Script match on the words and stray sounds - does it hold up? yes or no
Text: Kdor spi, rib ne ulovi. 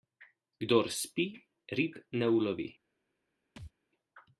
no